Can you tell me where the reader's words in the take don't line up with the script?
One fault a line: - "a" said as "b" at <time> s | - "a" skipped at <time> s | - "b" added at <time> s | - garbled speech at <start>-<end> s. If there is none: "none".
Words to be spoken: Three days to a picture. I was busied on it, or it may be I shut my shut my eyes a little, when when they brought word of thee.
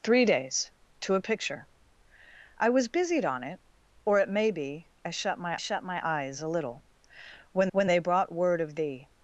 none